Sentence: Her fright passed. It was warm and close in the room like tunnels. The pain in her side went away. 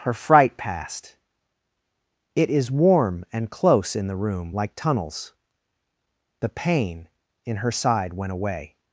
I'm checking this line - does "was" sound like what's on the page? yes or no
no